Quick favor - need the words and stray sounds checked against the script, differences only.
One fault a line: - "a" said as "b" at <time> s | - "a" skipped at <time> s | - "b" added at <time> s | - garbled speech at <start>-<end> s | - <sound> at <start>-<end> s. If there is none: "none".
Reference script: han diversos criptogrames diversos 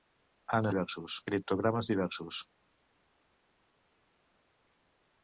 none